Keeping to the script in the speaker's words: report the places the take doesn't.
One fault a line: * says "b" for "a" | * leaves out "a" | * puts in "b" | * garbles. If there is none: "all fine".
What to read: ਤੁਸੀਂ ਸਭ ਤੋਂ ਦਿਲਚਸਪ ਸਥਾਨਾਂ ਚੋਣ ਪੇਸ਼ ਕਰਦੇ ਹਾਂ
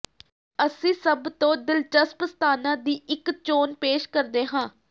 * says "ਅਸੀਂ" for "ਤੁਸੀਂ"
* puts in "ਦੀ ਇੱਕ"